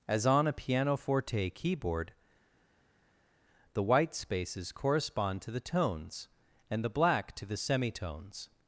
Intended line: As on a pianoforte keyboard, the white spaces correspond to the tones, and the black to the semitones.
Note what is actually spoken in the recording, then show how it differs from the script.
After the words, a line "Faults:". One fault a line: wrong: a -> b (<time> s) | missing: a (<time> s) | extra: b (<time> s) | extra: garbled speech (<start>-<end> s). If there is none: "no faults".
As on a pianoforte keyboard, the white spaces correspond to the tones, and the black to the semitones.
Faults:
no faults